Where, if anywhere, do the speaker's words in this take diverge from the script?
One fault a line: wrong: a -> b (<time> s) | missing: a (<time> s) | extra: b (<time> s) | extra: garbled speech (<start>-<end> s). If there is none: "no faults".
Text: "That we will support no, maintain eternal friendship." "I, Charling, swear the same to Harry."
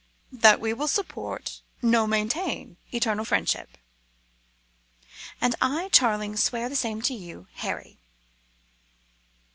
extra: And (5.4 s)
extra: you (7.1 s)